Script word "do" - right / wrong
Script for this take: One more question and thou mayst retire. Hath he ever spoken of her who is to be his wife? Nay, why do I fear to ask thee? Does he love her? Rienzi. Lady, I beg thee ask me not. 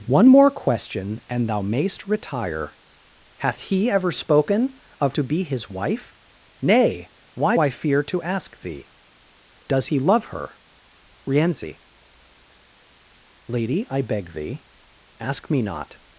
wrong